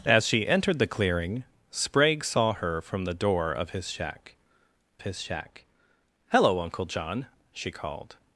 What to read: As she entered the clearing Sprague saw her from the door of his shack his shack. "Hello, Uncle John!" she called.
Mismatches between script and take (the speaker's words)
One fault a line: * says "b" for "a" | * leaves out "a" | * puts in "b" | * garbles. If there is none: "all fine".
all fine